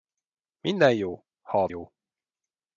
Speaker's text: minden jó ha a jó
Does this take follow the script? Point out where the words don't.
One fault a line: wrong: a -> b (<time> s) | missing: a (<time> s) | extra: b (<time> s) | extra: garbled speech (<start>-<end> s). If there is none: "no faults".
no faults